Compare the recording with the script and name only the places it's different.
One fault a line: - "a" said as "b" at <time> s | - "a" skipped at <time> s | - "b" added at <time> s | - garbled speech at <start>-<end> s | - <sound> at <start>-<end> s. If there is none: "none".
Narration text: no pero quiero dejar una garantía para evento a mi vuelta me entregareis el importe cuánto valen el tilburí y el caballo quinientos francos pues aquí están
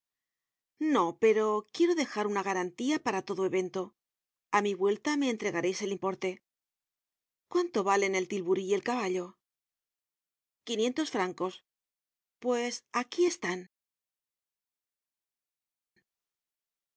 - "todo" added at 3.3 s